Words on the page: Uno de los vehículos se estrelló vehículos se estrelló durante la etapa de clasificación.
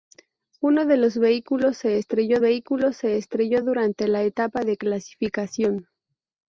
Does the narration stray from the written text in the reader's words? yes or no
no